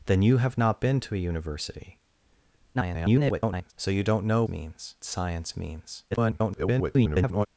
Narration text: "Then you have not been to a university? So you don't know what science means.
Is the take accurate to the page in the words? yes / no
no